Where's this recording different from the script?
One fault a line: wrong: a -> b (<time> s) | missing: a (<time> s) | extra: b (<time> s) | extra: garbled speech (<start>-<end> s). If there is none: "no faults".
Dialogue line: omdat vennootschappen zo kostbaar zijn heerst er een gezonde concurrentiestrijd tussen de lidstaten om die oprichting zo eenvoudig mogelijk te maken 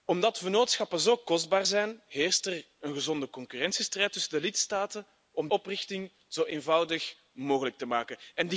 missing: die (5.5 s)